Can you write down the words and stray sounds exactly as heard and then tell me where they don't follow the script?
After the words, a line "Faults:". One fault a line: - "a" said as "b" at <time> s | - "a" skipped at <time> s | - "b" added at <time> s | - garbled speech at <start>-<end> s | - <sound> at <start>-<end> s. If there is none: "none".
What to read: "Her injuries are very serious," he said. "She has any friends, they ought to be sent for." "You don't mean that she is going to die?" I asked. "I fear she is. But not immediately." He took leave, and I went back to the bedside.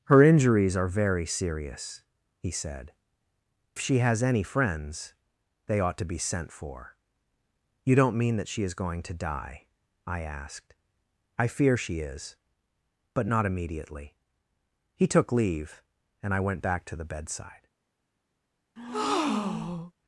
"Her injuries are very serious," he said. "She has any friends, they ought to be sent for." "You don't mean that she is going to die?" I asked. "I fear she is. But not immediately." He took leave, and I went back to the bedside.
Faults:
- breath at 18.8-19.9 s